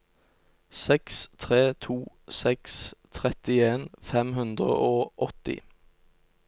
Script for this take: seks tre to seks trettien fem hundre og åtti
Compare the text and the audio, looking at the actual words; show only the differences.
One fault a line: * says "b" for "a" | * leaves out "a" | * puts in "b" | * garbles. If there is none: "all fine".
all fine